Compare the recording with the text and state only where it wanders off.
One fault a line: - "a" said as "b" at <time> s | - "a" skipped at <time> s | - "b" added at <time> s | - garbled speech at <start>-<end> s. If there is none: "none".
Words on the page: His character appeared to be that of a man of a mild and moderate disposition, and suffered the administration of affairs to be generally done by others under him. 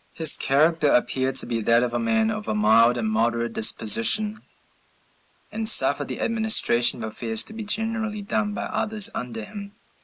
none